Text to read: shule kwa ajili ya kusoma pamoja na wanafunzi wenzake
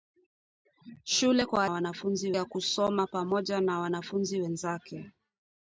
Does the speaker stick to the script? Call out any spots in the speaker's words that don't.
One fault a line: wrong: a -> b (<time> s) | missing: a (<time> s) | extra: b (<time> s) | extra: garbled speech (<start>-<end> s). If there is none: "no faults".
wrong: ajili -> wanafunzi (1.7 s)